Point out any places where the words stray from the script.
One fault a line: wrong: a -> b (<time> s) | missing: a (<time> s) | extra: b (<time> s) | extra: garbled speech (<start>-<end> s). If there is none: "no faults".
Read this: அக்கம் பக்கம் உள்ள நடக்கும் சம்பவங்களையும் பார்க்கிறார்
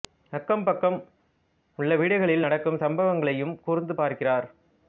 extra: வீடுகளில் (1.9 s)
extra: கூர்ந்து (3.6 s)